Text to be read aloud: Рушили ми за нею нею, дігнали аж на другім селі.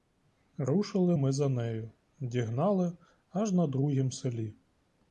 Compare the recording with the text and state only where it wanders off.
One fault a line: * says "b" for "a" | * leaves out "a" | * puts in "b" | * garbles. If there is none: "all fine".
* leaves out "нею"